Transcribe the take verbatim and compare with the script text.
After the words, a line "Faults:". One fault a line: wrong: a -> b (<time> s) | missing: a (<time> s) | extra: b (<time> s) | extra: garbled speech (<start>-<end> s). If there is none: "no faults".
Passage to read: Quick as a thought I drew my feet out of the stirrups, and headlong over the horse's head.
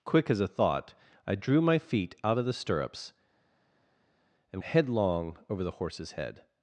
Quick as a thought I drew my feet out of the stirrups, and headlong over the horse's head.
Faults:
no faults